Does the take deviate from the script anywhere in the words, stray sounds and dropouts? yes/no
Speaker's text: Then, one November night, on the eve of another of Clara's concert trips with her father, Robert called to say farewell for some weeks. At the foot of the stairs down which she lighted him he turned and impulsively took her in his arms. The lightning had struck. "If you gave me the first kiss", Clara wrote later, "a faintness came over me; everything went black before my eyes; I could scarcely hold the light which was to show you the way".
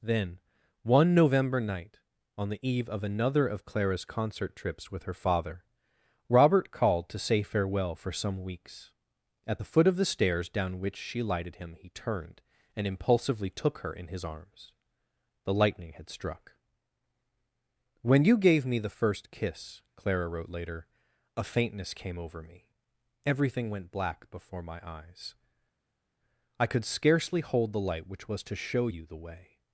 yes